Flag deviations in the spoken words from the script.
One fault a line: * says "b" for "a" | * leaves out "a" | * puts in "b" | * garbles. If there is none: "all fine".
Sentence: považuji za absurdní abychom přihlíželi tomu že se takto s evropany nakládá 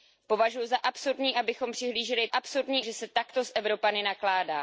* says "absurdní" for "tomu"